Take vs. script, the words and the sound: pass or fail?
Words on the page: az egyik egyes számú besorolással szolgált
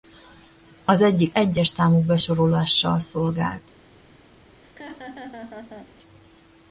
fail